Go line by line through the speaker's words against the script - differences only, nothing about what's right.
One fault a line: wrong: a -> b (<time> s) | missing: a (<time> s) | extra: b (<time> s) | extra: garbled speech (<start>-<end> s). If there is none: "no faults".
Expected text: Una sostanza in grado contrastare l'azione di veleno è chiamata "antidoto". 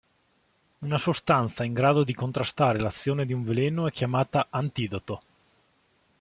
extra: di (2.0 s)
extra: un (3.3 s)